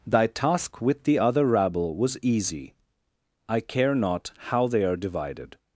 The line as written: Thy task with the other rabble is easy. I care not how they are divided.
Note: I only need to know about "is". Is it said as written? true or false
false